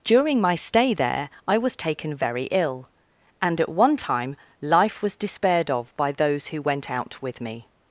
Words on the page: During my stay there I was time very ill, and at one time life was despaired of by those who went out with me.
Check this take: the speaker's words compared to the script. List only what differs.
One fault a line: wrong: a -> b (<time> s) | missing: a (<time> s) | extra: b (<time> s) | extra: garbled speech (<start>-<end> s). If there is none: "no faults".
wrong: time -> taken (1.8 s)